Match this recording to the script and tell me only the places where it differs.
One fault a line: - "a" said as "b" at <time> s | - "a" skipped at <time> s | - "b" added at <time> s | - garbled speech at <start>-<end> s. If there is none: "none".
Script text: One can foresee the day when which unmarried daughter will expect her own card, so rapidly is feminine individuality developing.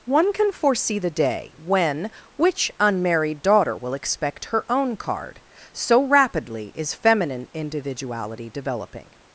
none